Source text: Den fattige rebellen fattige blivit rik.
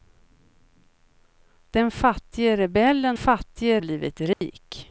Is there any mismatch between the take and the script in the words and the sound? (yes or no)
yes